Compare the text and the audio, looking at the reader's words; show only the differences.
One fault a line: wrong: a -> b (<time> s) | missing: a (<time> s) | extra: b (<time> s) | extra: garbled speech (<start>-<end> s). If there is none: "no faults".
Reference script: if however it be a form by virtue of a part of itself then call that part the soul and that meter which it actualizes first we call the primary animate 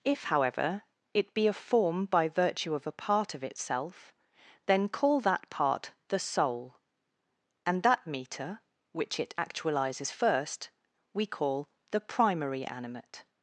no faults